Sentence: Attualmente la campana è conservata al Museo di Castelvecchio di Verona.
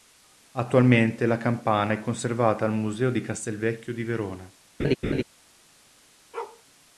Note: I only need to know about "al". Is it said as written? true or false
true